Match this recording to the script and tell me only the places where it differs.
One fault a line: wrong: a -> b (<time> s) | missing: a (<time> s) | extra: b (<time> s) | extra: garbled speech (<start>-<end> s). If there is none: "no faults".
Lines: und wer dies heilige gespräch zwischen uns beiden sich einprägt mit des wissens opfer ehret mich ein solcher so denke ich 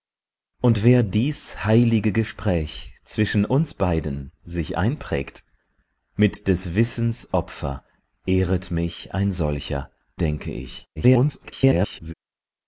missing: so (9.9 s)
extra: garbled speech (11.0-12.1 s)